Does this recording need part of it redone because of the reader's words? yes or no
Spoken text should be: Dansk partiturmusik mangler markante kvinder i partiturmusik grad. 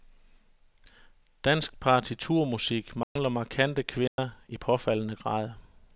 yes